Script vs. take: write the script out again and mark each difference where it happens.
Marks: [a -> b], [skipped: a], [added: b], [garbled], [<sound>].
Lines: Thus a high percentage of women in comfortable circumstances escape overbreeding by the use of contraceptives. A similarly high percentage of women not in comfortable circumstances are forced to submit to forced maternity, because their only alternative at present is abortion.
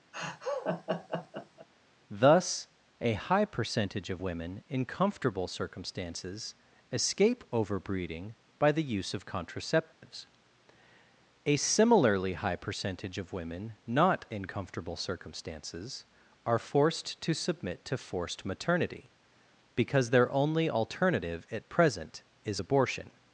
[laugh] Thus a high percentage of women in comfortable circumstances escape overbreeding by the use of contraceptives. [dropout] A similarly high percentage of women not in comfortable circumstances are forced to submit to forced maternity, because their only alternative at present is abortion.